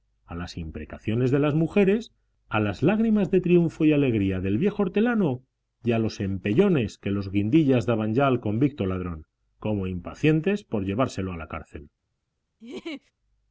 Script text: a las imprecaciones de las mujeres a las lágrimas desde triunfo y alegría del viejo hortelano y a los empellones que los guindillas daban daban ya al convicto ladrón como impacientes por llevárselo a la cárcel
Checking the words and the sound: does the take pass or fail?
fail